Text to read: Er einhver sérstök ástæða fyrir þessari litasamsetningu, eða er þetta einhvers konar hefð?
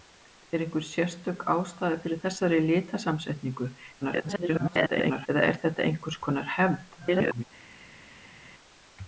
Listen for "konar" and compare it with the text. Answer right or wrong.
right